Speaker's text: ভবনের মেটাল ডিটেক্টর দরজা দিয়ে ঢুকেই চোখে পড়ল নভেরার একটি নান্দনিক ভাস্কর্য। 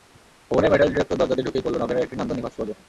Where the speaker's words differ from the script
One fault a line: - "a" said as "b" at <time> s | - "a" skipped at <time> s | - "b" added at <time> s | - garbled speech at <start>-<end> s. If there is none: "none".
- "চোখে" skipped at 1.6 s